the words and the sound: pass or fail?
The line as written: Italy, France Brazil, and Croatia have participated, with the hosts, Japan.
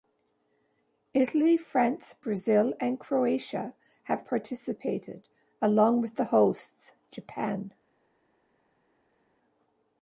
fail